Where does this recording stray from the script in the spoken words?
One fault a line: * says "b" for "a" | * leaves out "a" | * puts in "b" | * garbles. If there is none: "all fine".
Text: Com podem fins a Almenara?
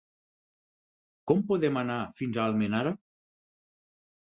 * puts in "anar"